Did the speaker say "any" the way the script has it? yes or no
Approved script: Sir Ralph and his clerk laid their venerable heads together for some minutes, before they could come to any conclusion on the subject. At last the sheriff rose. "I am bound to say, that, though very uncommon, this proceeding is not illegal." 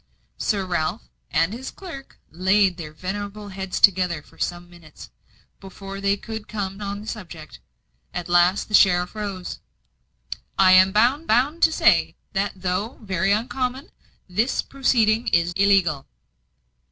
no